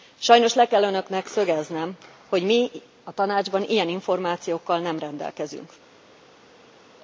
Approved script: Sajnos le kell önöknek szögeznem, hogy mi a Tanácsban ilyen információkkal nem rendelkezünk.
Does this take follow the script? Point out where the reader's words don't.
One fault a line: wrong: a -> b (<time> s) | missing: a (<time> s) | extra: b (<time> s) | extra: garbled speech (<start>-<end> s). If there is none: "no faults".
no faults